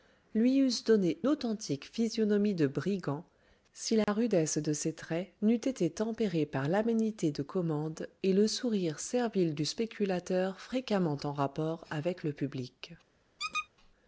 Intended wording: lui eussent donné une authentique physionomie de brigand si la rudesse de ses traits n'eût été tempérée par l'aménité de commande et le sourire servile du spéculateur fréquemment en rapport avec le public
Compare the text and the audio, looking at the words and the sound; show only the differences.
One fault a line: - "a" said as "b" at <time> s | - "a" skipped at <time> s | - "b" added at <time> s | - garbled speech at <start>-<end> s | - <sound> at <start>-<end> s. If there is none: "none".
- "une" skipped at 1.2 s
- dropout at 4.0-4.1 s
- squeak at 13.4-13.7 s